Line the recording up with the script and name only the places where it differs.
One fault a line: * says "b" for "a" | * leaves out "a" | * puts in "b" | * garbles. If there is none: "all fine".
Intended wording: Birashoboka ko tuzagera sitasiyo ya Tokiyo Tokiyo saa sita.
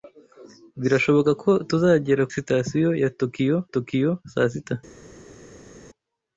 all fine